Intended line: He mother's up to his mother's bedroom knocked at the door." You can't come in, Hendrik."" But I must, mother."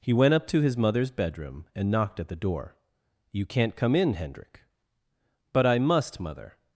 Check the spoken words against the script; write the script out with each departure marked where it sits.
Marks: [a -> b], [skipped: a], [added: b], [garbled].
He [mother's -> went] up to his mother's bedroom [added: and] knocked at the door." You can't come in, Hendrik."" But I must, mother."